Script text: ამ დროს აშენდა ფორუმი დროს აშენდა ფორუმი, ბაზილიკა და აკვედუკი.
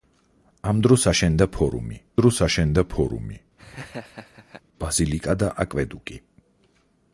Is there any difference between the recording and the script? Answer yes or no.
no